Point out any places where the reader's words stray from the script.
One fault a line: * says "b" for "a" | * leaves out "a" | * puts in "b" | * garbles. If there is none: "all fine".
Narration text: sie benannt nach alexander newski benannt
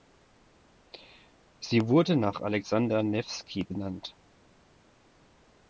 * says "wurde" for "benannt"